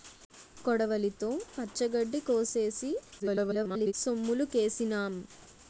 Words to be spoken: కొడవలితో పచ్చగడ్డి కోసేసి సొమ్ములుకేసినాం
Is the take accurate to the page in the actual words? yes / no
no